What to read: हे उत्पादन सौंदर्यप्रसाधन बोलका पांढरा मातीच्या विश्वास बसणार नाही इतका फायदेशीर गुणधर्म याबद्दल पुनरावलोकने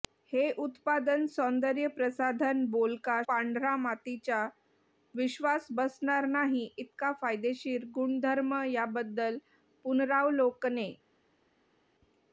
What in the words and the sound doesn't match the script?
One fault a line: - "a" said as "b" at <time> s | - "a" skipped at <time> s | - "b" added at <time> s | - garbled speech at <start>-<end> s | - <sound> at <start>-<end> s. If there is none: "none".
none